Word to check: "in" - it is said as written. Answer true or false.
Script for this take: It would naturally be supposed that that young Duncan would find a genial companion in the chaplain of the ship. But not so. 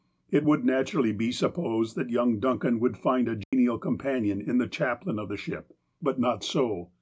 true